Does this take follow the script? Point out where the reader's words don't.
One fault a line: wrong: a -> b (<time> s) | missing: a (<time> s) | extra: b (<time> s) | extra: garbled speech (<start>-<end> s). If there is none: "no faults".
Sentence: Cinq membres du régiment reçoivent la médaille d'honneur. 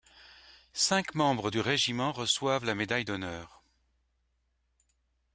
no faults